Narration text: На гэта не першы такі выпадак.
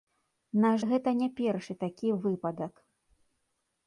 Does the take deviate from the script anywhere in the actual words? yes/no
no